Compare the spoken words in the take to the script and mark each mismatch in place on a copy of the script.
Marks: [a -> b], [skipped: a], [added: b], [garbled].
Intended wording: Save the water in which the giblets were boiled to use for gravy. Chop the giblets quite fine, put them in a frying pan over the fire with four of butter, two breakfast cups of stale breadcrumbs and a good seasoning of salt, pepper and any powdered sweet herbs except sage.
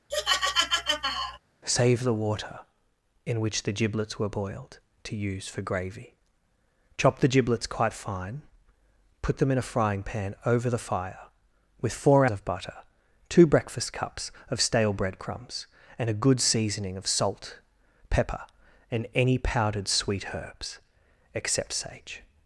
Save the water in which the giblets were boiled to use for gravy. Chop the giblets quite fine, put them in a frying pan over the fire with four of butter, two breakfast cups of stale breadcrumbs and a good seasoning of salt, pepper and any powdered sweet herbs except sage.